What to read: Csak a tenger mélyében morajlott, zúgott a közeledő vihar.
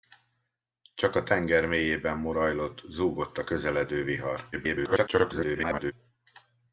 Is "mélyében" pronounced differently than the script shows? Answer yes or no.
no